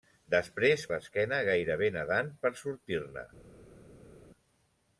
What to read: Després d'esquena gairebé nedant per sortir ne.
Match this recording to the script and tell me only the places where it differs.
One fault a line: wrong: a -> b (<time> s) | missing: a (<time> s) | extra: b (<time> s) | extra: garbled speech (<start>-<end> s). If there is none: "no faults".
no faults